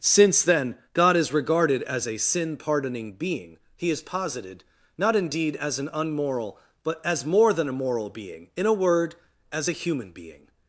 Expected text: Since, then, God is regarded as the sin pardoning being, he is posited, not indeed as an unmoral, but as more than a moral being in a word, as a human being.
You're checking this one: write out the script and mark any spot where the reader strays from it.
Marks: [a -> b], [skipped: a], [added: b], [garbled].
Since, then, God is regarded as [the -> a] sin pardoning being, he is posited, not indeed as an unmoral, but as more than a moral being in a word, as a human being.